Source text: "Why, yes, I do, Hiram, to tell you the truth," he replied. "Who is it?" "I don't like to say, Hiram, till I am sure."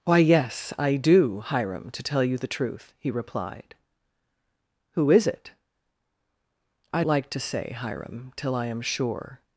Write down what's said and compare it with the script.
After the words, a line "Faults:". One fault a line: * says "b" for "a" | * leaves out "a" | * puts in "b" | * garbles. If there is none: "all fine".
"Why, yes, I do, Hiram, to tell you the truth," he replied. "Who is it?" "I like to say, Hiram, till I am sure."
Faults:
* leaves out "don't"